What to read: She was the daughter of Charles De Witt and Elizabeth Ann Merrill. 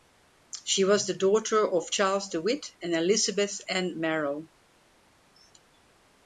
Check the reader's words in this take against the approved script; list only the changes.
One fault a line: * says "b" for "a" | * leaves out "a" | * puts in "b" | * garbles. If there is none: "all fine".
all fine